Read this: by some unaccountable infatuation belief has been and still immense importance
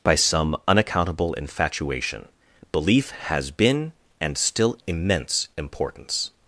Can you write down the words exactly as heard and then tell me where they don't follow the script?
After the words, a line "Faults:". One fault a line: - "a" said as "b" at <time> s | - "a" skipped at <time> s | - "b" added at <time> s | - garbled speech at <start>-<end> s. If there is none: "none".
by some unaccountable infatuation belief has been and still immense importance
Faults:
none